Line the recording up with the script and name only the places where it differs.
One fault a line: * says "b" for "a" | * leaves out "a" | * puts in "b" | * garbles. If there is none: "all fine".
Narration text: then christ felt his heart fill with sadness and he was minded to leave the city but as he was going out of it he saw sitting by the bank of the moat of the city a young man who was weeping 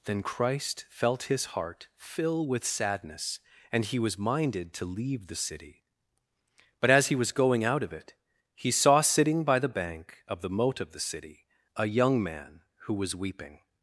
all fine